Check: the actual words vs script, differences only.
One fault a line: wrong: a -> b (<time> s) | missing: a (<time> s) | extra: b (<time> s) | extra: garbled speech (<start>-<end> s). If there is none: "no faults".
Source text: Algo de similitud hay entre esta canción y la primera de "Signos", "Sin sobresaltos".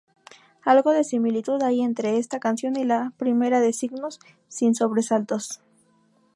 no faults